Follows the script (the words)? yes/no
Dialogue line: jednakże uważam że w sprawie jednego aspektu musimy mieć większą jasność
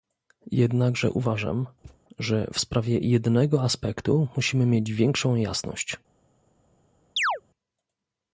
yes